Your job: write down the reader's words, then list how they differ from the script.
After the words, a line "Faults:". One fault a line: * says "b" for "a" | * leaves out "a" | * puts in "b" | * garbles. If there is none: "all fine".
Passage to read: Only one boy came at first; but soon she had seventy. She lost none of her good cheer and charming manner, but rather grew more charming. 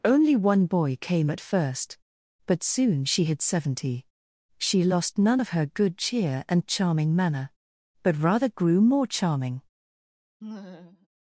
Only one boy came at first; but soon she had seventy. She lost none of her good cheer and charming manner, but rather grew more charming.
Faults:
all fine